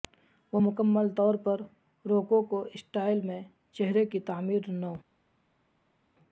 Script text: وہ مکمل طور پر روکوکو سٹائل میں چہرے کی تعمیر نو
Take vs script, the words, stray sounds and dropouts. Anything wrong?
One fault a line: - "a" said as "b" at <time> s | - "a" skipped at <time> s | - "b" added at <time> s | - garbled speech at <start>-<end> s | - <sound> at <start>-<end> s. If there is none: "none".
none